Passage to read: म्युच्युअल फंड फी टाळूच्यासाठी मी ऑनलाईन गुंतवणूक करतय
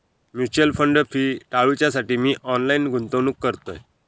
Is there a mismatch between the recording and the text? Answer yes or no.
no